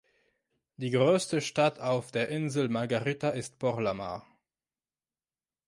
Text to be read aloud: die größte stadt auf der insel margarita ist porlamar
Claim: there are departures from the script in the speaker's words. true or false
false